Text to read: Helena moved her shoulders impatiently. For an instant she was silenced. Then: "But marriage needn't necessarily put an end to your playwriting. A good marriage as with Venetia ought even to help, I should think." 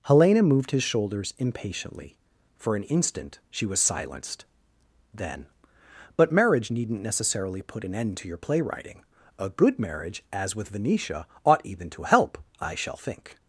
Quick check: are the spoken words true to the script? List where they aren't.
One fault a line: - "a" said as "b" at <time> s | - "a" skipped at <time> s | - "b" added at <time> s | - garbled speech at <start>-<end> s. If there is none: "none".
- "her" said as "his" at 0.7 s
- "should" said as "shall" at 12.7 s